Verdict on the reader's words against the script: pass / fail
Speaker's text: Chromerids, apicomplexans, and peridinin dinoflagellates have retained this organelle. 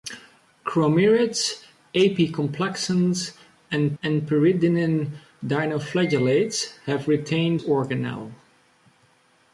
fail